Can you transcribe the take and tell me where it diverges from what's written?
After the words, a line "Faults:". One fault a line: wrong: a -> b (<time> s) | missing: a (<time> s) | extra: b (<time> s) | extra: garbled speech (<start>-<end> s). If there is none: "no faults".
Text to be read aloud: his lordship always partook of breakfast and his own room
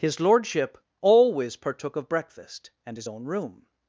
his lordship always partook of breakfast and his own room
Faults:
no faults